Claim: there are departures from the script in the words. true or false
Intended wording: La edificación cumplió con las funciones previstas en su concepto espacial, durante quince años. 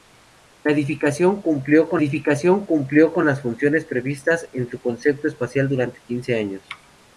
true